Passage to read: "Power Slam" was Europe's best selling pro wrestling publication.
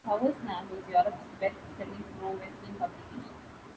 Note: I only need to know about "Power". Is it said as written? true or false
true